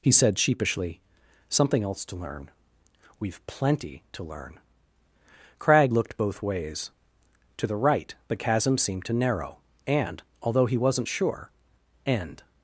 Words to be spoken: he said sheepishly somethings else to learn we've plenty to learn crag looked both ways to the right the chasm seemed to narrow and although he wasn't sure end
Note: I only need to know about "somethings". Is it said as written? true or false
false